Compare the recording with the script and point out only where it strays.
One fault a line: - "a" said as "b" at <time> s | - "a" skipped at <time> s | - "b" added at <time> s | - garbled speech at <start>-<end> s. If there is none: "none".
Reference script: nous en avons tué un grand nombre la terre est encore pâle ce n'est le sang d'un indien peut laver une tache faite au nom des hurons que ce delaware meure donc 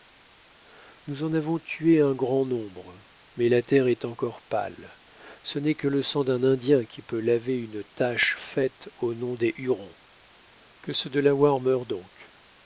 - "mais" added at 3.4 s
- "que" added at 5.8 s
- "qui" added at 6.8 s